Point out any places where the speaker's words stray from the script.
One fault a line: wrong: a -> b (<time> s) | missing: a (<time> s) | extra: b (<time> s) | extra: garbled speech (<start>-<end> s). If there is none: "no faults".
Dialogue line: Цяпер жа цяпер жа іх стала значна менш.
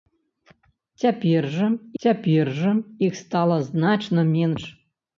no faults